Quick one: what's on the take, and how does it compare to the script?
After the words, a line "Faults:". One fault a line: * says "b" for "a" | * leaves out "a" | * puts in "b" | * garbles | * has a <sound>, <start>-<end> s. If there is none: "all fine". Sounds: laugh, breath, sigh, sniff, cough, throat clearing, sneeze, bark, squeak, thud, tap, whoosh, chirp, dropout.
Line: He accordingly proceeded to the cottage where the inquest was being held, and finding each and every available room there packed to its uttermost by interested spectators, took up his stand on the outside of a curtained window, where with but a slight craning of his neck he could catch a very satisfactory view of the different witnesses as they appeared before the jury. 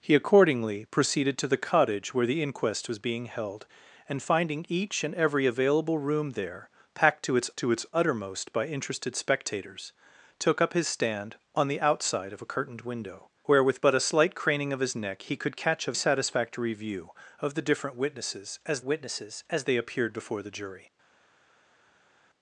He accordingly proceeded to the cottage where the inquest was being held, and finding each and every available room there packed to its to its uttermost by interested spectators, took up his stand on the outside of a curtained window, where with but a slight craning of his neck he could catch a satisfactory view of the different witnesses as witnesses as they appeared before the jury.
Faults:
* puts in "to its"
* leaves out "very"
* puts in "witnesses as"